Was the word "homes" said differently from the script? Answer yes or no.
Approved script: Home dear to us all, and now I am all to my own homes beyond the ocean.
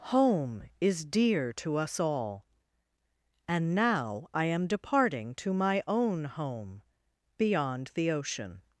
yes